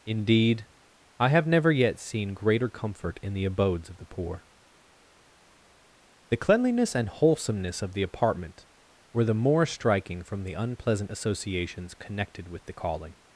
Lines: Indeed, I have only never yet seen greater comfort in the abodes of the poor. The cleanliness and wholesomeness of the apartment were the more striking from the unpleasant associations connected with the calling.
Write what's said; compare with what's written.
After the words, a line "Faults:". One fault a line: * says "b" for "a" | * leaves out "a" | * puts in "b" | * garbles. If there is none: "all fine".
Indeed, I have never yet seen greater comfort in the abodes of the poor. The cleanliness and wholesomeness of the apartment were the more striking from the unpleasant associations connected with the calling.
Faults:
* leaves out "only"